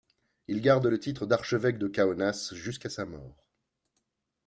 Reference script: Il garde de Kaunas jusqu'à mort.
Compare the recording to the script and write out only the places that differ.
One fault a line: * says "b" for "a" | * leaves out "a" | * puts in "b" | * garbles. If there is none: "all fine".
* puts in "le titre d'archevêque"
* puts in "sa"